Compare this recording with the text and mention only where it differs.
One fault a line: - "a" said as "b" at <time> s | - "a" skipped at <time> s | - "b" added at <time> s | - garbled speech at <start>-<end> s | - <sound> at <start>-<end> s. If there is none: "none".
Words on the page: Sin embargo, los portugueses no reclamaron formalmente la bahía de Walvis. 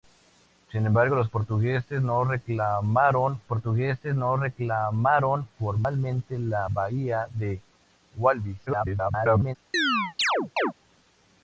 - "portugueses no reclamaron" added at 3.5 s
- garbled speech at 8.7-9.6 s
- chirp at 9.7-10.7 s